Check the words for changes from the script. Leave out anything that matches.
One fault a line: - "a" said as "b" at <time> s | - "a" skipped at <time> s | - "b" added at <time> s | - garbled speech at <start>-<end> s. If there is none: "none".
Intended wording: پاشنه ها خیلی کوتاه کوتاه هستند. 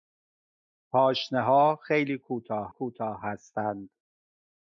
none